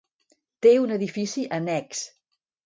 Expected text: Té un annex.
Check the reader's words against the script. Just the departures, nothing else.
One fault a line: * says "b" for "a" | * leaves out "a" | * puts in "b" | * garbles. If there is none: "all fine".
* puts in "edifici"